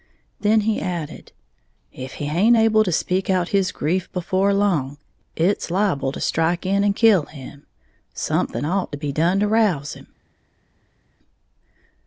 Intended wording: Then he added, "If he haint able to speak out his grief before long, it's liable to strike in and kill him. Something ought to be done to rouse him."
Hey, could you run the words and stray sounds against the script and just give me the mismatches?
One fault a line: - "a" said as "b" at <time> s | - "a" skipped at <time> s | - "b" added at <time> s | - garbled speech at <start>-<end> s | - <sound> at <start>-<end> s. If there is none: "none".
none